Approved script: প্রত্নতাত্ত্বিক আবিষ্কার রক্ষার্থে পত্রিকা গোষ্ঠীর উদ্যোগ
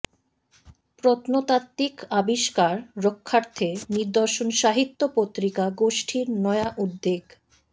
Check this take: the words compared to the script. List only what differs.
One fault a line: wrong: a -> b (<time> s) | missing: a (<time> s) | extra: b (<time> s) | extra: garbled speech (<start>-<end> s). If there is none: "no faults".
extra: নিদর্শন সাহিত্য (3.9 s)
extra: নয়া (6.4 s)